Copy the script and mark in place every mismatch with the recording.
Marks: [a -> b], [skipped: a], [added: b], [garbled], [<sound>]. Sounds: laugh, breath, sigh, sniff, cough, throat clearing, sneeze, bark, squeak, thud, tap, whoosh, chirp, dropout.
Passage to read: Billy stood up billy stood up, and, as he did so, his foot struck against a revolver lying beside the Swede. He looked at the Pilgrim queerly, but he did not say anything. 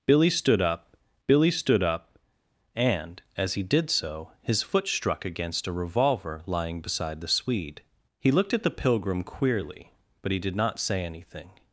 Billy stood up billy stood up, and, as he did so, his foot struck against a revolver lying beside the Swede. He looked at the Pilgrim queerly, but he did not say anything.